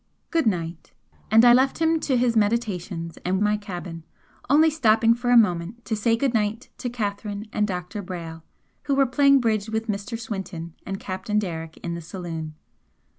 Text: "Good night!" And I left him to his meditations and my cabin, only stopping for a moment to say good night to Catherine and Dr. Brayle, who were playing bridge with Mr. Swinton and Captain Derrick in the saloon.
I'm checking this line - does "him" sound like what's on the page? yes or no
yes